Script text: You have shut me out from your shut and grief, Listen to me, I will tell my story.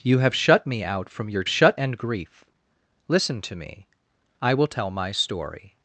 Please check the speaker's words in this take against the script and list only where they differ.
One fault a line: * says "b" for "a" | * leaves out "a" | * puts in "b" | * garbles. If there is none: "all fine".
all fine